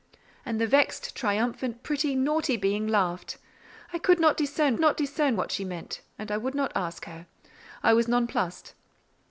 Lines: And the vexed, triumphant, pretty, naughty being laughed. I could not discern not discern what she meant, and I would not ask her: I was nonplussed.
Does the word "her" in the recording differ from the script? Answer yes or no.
no